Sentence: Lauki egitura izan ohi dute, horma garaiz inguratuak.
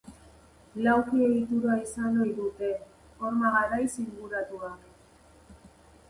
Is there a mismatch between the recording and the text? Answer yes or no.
no